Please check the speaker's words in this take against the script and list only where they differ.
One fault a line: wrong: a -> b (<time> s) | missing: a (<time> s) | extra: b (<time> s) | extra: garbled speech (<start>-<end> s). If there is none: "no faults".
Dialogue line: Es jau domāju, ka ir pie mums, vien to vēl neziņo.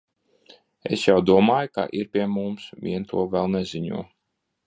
no faults